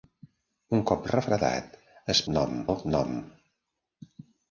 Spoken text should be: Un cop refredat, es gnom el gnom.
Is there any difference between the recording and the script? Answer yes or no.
no